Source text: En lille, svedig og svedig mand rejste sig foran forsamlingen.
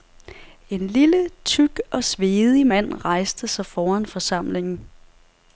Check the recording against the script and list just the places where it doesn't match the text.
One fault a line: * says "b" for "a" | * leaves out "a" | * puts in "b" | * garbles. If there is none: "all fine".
* says "tyk" for "svedig"